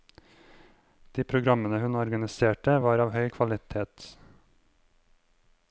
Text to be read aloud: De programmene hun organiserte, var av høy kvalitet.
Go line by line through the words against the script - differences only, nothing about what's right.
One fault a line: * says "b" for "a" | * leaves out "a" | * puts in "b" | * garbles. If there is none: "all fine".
all fine